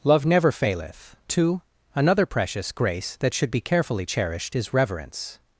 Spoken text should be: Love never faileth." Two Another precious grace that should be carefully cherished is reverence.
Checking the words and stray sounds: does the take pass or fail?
pass